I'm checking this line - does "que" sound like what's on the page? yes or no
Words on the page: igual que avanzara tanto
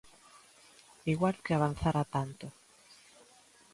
yes